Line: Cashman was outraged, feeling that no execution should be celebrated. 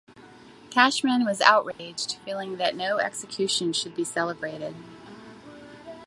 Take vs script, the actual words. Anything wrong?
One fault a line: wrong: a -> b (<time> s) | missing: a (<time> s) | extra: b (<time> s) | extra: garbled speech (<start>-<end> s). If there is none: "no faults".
no faults